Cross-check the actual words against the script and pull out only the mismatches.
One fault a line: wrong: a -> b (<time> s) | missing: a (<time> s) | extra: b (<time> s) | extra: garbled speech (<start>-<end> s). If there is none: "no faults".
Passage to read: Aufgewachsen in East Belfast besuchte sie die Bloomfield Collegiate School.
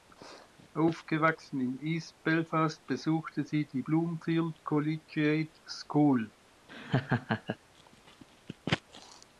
no faults